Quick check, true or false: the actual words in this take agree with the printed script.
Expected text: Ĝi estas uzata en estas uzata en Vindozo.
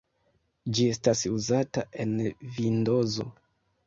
false